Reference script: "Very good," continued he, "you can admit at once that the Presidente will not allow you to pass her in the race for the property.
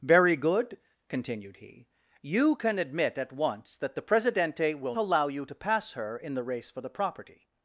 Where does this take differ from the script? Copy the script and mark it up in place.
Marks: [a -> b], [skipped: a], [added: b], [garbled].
"Very good," continued he, "you can admit at once that the Presidente will [skipped: not] allow you to pass her in the race for the property.